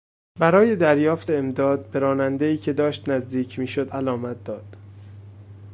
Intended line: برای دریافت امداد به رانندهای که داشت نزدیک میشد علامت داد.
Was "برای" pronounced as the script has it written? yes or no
yes